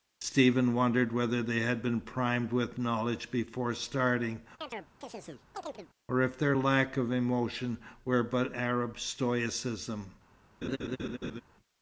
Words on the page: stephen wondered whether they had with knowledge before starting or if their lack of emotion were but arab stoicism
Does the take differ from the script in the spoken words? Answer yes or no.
yes